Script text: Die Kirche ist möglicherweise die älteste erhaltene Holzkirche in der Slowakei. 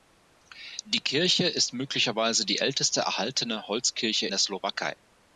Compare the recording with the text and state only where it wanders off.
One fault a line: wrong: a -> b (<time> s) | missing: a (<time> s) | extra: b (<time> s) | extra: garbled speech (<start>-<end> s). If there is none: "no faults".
missing: in (4.3 s)